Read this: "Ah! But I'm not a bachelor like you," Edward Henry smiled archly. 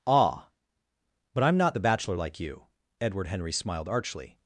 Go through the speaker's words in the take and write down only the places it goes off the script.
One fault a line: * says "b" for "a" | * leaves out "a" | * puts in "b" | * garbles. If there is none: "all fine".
* says "the" for "a"